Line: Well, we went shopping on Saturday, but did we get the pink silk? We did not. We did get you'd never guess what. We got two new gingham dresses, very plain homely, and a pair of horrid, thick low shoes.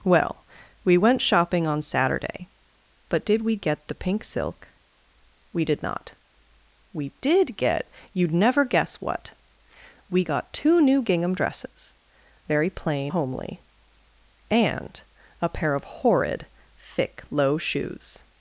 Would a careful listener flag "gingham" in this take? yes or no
no